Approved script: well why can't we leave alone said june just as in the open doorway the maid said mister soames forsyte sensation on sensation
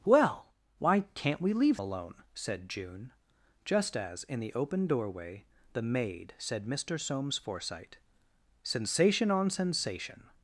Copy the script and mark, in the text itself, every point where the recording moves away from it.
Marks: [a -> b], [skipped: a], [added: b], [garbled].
well why can't we leave alone said june just as in the open doorway the maid said mister soames forsyte sensation on sensation